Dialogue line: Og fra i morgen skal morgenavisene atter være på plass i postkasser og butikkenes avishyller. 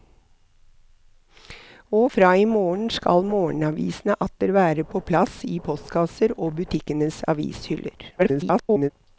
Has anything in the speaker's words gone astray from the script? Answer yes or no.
yes